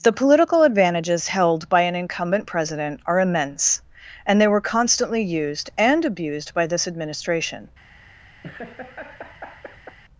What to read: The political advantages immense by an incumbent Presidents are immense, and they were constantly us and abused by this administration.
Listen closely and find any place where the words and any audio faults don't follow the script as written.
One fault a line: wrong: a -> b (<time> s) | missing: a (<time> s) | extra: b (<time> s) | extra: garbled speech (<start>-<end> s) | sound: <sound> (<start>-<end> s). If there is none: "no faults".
wrong: immense -> held (1.3 s)
wrong: Presidents -> President (2.5 s)
wrong: us -> used (5.2 s)
sound: laugh (8.4-10.0 s)